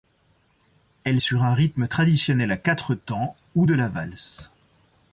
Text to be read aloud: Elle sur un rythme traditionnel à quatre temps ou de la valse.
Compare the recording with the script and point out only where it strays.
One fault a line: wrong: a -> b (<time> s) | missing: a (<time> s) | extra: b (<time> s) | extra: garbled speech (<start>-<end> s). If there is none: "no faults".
no faults